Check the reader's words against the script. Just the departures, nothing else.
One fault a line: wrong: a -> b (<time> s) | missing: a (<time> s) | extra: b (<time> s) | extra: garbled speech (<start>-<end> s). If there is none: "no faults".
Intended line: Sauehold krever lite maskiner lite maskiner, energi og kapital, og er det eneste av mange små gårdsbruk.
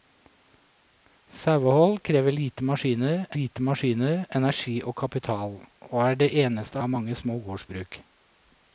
no faults